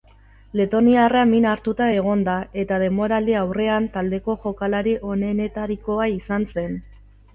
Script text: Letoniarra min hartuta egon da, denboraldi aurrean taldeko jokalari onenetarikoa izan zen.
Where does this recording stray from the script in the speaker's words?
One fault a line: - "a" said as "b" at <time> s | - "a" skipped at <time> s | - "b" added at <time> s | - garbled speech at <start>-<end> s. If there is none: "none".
- "eta" added at 2.6 s